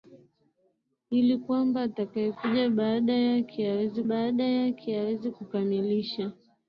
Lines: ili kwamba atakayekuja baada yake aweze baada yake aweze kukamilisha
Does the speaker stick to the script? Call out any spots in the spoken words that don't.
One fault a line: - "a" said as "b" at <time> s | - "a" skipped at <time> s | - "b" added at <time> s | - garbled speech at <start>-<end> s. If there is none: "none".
none